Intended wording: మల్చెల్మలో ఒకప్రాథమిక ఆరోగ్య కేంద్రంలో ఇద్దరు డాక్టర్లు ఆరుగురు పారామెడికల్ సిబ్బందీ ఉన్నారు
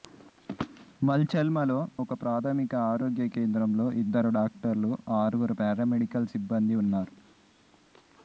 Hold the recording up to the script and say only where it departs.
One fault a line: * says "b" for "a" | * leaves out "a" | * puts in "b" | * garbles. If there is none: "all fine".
all fine